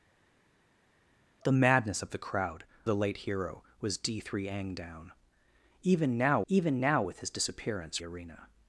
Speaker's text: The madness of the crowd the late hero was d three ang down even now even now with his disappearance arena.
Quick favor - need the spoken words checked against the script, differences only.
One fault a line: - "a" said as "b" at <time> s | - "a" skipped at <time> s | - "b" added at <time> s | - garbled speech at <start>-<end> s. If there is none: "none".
none